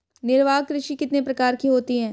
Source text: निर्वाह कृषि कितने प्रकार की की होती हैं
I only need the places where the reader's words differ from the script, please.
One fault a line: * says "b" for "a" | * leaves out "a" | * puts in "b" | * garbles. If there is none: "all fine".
* leaves out "की"